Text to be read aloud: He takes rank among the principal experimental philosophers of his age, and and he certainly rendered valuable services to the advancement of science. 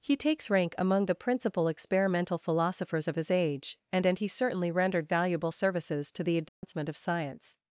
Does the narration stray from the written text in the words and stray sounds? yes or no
yes